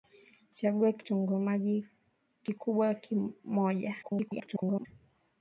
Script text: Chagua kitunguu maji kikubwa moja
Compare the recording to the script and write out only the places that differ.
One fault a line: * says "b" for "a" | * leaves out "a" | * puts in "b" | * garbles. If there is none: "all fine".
* garbles